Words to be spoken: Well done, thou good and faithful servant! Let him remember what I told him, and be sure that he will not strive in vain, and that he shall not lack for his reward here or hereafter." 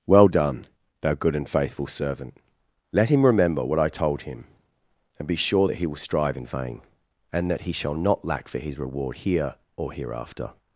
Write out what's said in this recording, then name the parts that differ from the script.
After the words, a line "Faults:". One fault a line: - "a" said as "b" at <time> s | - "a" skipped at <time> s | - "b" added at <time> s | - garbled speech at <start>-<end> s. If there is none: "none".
Well done, thou good and faithful servant! Let him remember what I told him, and be sure that he will strive in vain, and that he shall not lack for his reward here or hereafter."
Faults:
- "not" skipped at 6.0 s